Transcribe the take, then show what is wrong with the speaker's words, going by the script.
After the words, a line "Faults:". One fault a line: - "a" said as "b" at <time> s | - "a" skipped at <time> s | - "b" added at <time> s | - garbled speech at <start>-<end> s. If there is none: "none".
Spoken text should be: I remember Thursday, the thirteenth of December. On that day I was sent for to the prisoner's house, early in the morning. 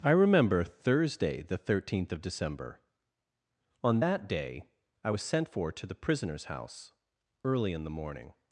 I remember Thursday, the thirteenth of December. On that day I was sent for to the prisoner's house, early in the morning.
Faults:
none